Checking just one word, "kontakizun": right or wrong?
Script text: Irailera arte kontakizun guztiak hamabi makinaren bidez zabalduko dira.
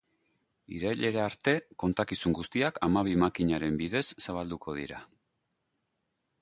right